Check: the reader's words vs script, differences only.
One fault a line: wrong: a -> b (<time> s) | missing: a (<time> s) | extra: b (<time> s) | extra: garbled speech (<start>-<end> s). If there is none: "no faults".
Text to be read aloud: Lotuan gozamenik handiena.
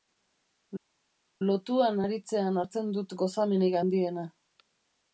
extra: aritzean hartzen dut (2.0 s)